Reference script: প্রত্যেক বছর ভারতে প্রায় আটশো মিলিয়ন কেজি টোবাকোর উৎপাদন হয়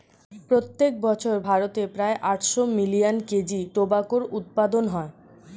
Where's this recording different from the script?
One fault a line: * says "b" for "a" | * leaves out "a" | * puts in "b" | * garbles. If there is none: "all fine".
all fine